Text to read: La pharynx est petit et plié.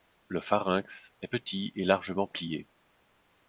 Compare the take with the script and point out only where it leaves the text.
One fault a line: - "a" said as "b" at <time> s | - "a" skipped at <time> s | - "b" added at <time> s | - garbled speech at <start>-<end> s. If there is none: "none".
- "La" said as "Le" at 0.2 s
- "largement" added at 1.8 s